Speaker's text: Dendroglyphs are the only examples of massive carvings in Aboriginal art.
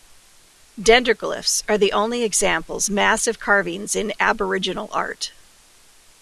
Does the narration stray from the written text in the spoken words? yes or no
yes